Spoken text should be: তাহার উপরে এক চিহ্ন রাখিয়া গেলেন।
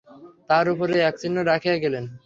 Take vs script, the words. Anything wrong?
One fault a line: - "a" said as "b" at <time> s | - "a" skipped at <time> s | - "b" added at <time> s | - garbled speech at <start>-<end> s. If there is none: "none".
none